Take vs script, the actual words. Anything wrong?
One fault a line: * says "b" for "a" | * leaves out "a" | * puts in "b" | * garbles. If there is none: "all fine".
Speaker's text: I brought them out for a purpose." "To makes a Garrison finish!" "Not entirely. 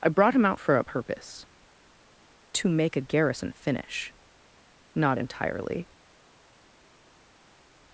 * says "him" for "them"
* says "make" for "makes"